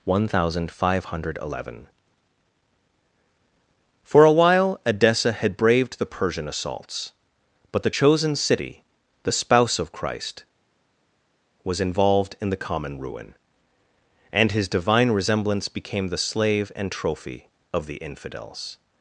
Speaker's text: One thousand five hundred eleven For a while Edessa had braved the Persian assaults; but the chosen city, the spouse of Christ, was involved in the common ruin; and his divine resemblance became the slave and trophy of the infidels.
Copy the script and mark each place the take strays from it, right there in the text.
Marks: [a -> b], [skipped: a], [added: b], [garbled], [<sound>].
One thousand five hundred eleven For a while Edessa had braved the Persian assaults; but the chosen city, the spouse of Christ, was involved in the common ruin; and his divine resemblance became the slave and trophy of the infidels.